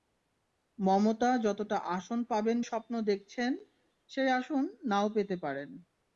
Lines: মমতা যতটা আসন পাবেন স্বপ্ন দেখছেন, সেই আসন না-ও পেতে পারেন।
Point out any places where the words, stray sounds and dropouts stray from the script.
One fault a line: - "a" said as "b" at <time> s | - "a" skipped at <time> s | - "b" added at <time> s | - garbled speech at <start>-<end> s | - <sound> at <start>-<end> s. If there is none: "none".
none